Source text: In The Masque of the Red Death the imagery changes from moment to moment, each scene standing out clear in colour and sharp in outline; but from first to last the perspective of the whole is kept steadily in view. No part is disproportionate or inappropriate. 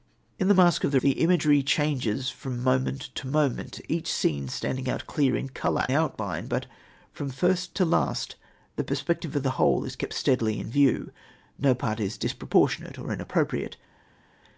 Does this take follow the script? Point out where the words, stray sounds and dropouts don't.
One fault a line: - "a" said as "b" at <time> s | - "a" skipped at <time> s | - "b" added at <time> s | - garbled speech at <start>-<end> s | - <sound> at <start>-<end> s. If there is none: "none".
- "Red Death" skipped at 1.0 s
- "and sharp in" skipped at 5.8 s